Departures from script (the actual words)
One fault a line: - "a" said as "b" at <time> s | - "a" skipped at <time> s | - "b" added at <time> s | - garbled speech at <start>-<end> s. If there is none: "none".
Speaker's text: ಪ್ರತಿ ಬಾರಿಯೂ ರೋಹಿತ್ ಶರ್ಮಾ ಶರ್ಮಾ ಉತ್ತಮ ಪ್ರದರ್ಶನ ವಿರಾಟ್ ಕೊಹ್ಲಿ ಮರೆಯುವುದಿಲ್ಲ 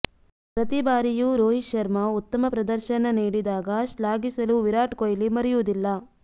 - "ಶರ್ಮಾ" skipped at 2.0 s
- "ನೀಡಿದಾಗ ಶ್ಲಾಘಿಸಲು" added at 3.2 s